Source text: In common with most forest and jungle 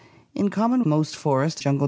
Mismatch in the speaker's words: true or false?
true